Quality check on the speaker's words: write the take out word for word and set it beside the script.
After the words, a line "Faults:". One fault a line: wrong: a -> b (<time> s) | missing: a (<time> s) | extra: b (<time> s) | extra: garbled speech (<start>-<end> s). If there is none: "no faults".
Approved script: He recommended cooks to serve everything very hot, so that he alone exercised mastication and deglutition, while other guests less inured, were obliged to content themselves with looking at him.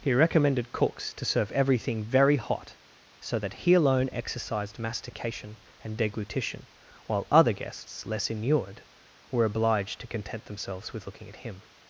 He recommended cooks to serve everything very hot, so that he alone exercised mastication and deglutition, while other guests less inured, were obliged to content themselves with looking at him.
Faults:
no faults